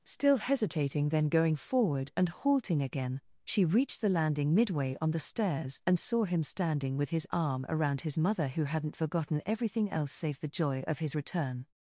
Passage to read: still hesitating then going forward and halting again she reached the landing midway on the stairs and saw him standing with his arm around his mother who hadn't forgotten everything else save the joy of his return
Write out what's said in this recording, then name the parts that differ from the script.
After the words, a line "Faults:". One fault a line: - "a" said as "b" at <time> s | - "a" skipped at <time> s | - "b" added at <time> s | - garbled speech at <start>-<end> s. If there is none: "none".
still hesitating then going forward and halting again she reached the landing midway on the stairs and saw him standing with his arm around his mother who hadn't forgotten everything else save the joy of his return
Faults:
none